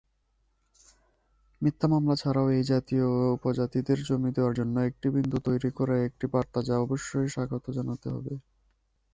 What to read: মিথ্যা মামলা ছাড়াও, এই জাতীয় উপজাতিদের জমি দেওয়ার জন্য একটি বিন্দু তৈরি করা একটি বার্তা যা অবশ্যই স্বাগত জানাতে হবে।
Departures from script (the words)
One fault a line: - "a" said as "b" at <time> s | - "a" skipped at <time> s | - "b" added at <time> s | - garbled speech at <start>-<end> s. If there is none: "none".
none